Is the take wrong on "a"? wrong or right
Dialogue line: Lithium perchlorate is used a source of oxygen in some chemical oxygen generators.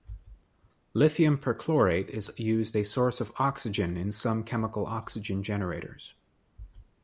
right